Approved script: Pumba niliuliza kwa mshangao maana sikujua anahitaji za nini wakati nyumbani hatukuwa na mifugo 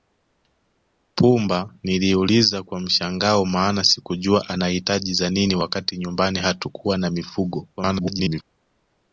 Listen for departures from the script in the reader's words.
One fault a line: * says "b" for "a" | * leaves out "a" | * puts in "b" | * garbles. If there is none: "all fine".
* garbles